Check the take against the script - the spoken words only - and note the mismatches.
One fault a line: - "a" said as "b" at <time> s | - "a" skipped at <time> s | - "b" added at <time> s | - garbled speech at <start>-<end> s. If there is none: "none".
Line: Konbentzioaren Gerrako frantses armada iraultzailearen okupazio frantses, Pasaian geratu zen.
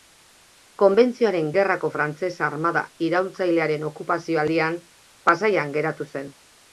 - "frantses" said as "aldian" at 4.4 s